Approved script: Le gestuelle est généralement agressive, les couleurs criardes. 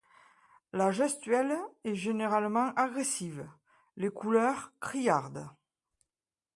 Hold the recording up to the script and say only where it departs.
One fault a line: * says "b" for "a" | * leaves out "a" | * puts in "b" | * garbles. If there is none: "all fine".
* says "La" for "Le"